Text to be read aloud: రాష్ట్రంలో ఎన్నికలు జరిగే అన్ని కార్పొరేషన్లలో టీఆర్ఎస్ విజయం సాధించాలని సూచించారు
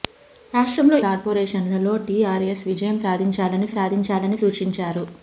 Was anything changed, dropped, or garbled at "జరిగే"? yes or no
yes